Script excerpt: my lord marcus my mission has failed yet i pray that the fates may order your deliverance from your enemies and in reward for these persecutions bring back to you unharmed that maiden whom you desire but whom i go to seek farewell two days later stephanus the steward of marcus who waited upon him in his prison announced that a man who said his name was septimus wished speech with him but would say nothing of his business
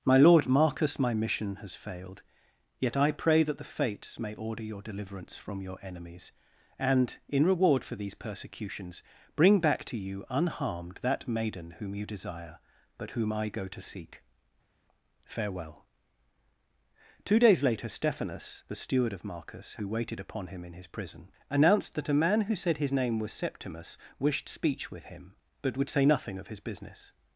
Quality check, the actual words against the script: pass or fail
pass